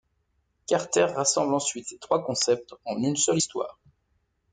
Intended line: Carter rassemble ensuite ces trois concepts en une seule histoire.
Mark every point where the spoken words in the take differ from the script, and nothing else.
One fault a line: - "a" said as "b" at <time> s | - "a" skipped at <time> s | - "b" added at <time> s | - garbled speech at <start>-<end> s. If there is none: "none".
none